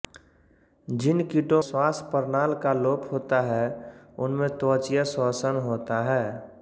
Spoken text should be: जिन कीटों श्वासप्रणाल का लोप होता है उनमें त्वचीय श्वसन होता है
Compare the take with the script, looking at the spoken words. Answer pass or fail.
pass